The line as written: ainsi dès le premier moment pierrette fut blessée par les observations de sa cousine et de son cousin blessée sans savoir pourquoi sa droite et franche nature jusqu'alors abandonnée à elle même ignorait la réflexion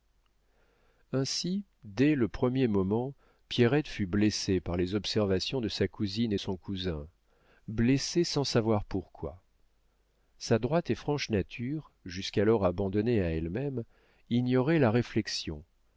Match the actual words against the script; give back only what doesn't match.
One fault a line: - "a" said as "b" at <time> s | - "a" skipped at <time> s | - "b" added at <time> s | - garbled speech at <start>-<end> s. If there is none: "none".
- "de" skipped at 6.4 s